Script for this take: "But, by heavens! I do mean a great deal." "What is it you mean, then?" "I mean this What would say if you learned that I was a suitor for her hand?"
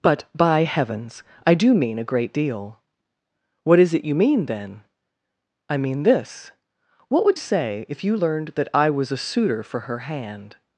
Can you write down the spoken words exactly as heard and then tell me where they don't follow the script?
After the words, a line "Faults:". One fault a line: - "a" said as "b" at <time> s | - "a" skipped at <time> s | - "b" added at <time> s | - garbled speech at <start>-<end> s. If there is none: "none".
"But, by heavens! I do mean a great deal." "What is it you mean, then?" "I mean this What would say if you learned that I was a suitor for her hand?"
Faults:
none